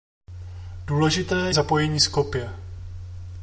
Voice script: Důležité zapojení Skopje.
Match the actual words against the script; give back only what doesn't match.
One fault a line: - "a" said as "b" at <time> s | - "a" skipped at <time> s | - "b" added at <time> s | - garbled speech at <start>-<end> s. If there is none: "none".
none